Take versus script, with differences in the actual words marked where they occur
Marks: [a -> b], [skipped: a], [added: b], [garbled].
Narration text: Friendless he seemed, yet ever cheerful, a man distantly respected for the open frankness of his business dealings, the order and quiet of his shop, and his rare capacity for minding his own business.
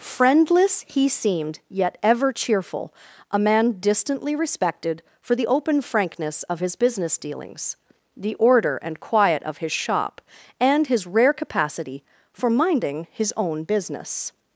Friendless he seemed, yet ever cheerful, a man distantly respected for the open frankness of his business dealings, the order and quiet of his shop, and his rare capacity for minding his own business.